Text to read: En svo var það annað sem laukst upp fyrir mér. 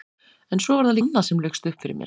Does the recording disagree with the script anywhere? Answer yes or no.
no